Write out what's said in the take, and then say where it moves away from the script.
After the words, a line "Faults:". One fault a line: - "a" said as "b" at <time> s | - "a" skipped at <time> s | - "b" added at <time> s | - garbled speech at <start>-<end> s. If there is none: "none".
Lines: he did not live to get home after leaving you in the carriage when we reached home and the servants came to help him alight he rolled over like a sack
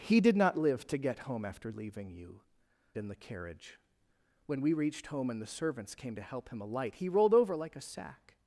he did not live to get home after leaving you in the carriage when we reached home and the servants came to help him alight he rolled over like a sack
Faults:
none